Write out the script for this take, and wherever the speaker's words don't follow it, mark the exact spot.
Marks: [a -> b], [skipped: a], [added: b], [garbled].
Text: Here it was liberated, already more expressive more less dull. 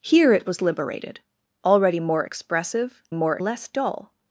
Here it was liberated, already more expressive more less dull.